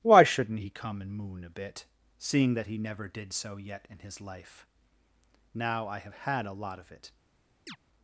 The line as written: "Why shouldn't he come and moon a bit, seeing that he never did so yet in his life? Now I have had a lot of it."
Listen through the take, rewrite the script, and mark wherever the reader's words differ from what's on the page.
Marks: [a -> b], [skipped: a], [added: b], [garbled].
"Why shouldn't he come and moon a bit, seeing that he never did so yet in his life? Now I have had a lot of it."